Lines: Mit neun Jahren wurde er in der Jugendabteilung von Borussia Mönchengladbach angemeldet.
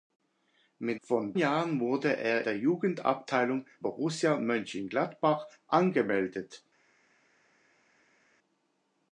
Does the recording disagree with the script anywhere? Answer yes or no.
yes